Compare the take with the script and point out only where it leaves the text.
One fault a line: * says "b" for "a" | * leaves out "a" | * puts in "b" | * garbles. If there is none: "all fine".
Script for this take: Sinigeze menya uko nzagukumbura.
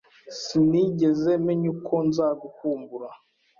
all fine